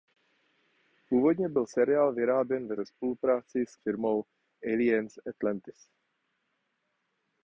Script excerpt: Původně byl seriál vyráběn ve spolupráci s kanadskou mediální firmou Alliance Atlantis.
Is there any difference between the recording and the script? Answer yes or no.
yes